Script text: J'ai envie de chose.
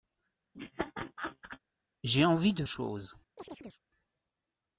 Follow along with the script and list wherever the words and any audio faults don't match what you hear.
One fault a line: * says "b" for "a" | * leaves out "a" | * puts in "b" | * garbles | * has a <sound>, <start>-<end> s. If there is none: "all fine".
* has a laugh, 0.5-1.6 s
* has a chirp, 3.4-3.8 s